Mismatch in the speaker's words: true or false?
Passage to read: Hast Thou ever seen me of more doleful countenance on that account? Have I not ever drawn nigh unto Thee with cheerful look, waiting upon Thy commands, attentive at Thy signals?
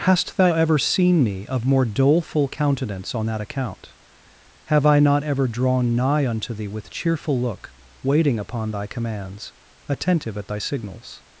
false